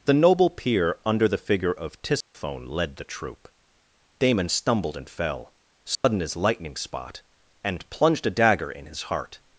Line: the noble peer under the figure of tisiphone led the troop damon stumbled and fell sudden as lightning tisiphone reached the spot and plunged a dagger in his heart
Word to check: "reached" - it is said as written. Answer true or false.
false